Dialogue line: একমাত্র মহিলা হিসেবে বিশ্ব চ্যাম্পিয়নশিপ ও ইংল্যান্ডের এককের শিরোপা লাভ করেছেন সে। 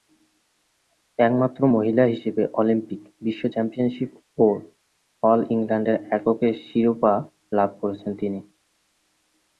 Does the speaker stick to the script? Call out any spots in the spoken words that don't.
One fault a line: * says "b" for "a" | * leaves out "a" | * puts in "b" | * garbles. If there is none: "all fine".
* puts in "অলিম্পিক"
* puts in "অল"
* says "তিনি" for "সে"